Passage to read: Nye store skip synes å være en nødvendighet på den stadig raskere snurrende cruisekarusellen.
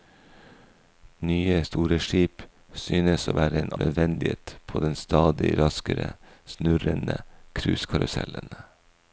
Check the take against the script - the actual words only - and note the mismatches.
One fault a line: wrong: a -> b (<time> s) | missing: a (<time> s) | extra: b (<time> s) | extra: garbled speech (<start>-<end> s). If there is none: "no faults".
no faults